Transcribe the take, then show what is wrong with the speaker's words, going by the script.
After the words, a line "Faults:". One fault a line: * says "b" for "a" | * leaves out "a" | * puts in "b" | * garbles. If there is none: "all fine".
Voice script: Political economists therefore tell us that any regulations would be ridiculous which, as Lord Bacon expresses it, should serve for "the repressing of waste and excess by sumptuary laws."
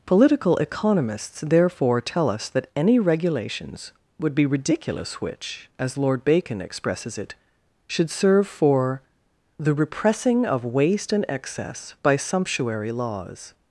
Political economists therefore tell us that any regulations would be ridiculous which, as Lord Bacon expresses it, should serve for "the repressing of waste and excess by sumptuary laws."
Faults:
all fine